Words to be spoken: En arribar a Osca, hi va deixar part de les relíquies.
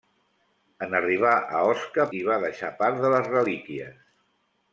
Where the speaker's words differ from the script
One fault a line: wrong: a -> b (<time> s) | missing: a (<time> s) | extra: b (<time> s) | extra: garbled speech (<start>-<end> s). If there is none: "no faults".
no faults